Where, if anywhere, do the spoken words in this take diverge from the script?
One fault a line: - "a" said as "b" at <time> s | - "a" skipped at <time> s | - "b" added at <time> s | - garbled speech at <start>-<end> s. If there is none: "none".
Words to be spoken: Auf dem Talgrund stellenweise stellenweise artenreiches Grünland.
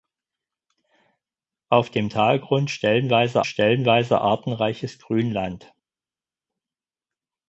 none